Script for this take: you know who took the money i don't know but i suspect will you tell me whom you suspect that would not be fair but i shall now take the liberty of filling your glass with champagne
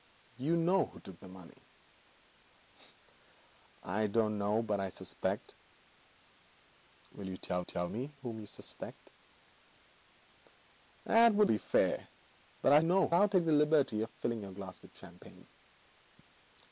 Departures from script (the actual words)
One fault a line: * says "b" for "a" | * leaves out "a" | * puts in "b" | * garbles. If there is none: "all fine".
* puts in "tell"
* leaves out "not"
* says "know" for "shall"